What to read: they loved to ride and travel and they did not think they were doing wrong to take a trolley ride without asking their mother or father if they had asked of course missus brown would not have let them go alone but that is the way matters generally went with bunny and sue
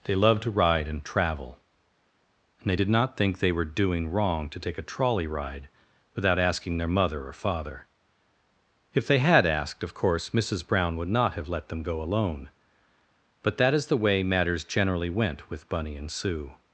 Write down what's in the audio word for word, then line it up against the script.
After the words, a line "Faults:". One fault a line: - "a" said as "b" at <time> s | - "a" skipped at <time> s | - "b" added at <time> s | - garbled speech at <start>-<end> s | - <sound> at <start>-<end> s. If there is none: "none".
they loved to ride and travel and they did not think they were doing wrong to take a trolley ride without asking their mother or father if they had asked of course missus brown would not have let them go alone but that is the way matters generally went with bunny and sue
Faults:
none